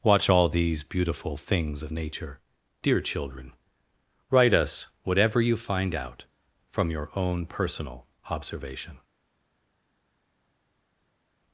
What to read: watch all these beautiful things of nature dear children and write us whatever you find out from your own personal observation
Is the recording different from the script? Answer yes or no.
yes